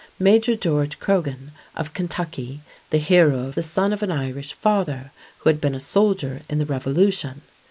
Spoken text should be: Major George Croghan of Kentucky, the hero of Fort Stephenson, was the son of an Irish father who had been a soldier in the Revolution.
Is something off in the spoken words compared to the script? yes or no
yes